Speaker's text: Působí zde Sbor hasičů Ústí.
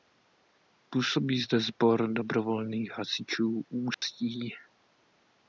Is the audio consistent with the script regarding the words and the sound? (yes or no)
no